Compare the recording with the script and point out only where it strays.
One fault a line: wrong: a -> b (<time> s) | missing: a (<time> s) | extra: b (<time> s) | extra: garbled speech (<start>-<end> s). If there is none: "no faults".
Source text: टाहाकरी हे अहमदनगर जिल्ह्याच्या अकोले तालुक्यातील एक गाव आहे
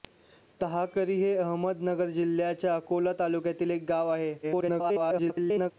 extra: garbled speech (4.4-5.7 s)